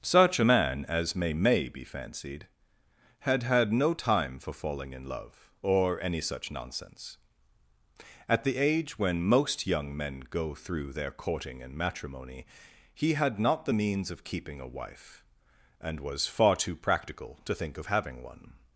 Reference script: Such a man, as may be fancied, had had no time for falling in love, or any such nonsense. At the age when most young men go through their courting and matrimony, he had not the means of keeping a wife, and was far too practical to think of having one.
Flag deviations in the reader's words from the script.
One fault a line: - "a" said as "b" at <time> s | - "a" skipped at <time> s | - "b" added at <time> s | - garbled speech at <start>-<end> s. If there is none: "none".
- "may" added at 1.3 s